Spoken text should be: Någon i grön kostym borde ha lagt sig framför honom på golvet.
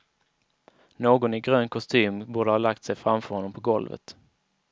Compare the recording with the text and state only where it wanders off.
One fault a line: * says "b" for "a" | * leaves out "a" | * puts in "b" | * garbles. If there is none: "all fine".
all fine